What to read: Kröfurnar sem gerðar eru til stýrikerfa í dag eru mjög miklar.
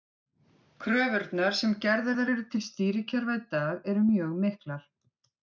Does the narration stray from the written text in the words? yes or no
no